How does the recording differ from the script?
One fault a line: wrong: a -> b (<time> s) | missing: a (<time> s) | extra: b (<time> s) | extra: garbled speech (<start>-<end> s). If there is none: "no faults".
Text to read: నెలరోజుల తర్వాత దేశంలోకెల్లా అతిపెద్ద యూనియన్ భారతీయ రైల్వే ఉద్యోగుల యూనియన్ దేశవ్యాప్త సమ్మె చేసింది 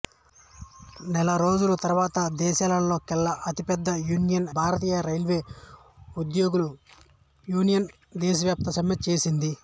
no faults